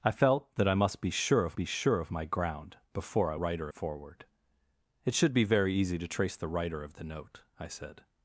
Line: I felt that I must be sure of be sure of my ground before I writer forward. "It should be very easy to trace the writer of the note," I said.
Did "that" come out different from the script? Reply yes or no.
no